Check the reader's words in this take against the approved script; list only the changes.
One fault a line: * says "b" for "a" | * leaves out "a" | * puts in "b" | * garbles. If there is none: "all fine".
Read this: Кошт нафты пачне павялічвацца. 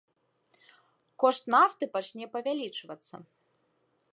all fine